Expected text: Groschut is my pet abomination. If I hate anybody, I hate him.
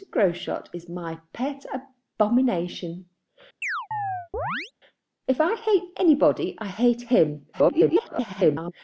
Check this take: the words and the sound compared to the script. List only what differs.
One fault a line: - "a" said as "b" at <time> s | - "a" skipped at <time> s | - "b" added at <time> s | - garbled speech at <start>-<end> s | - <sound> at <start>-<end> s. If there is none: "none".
- chirp at 3.6-4.7 s
- garbled speech at 7.5-8.7 s